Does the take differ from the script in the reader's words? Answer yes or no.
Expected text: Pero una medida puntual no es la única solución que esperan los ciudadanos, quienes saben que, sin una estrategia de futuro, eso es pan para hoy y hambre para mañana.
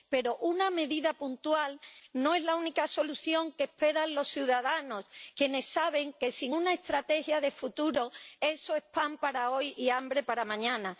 no